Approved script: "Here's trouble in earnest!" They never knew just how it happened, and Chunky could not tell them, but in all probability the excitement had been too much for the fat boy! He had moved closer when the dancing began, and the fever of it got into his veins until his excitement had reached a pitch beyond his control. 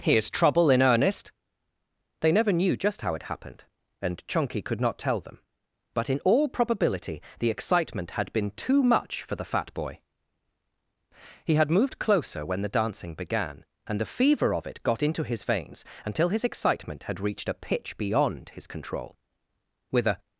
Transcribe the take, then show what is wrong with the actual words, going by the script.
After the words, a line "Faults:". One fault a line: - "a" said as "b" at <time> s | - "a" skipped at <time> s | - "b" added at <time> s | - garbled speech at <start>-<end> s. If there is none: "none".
"Here's trouble in earnest!" They never knew just how it happened, and Chunky could not tell them, but in all probability the excitement had been too much for the fat boy! He had moved closer when the dancing began, and the fever of it got into his veins until his excitement had reached a pitch beyond his control. With a
Faults:
- "With a" added at 19.9 s